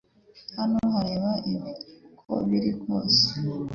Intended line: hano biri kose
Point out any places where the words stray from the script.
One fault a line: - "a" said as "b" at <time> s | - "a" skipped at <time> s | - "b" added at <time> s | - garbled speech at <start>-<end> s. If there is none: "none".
- "reba ibi uko" added at 1.0 s